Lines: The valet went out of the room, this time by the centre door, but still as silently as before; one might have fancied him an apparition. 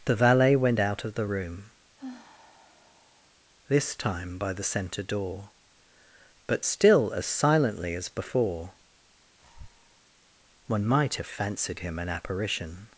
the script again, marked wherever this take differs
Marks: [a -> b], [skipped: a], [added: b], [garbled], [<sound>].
The valet went out of the room, [sigh] this time by the centre door, but still as silently as before; [breath] one might have fancied him an apparition.